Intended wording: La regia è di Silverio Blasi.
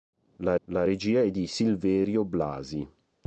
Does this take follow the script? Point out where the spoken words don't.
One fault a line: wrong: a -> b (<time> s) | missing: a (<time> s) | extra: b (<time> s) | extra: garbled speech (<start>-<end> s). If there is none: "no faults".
extra: la (0.7 s)